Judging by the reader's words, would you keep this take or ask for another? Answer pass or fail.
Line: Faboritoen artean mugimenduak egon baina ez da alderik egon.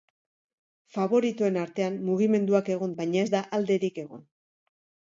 pass